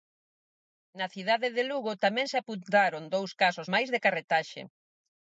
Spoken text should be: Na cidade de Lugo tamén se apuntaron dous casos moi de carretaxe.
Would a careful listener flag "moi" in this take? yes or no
yes